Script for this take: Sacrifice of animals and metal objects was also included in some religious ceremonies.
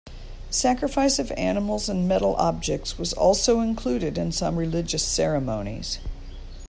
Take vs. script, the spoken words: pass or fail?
pass